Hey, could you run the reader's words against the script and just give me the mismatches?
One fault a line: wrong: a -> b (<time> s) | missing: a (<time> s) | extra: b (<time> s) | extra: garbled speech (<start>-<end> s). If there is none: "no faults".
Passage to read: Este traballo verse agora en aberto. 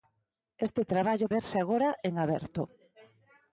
no faults